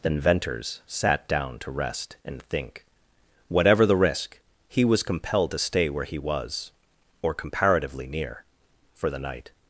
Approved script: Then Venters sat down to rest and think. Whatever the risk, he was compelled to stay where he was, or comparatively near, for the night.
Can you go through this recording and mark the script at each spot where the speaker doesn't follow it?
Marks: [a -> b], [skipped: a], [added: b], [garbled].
Then Venters sat down to rest and think. Whatever the risk, he was compelled to stay where he was, or comparatively near, for the night.